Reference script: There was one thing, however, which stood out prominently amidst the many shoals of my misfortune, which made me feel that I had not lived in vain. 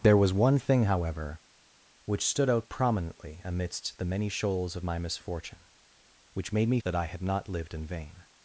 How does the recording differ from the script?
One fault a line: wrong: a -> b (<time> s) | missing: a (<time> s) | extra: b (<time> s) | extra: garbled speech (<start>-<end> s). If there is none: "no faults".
missing: feel (6.8 s)